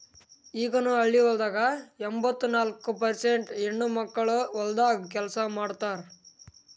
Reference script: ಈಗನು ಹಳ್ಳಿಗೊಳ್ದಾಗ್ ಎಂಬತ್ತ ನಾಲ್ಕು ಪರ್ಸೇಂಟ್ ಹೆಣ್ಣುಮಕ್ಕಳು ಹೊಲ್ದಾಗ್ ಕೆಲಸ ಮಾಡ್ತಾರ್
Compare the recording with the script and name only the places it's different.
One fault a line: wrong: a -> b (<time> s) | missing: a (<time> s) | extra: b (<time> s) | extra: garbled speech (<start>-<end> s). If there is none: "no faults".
no faults